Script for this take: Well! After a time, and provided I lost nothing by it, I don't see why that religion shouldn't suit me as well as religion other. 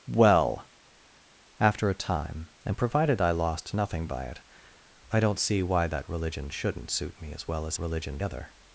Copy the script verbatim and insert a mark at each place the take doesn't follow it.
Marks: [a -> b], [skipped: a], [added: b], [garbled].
Well! After a time, and provided I lost nothing by it, I don't see why that religion shouldn't suit me as well as religion other.